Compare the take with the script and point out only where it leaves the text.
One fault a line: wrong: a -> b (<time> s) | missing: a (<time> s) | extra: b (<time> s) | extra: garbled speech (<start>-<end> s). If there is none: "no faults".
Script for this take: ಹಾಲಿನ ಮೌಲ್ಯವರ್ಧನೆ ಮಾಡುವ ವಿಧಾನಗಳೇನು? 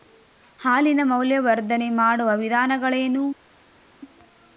no faults